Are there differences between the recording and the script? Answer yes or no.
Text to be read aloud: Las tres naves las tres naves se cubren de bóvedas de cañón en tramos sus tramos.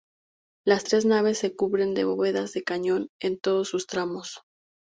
yes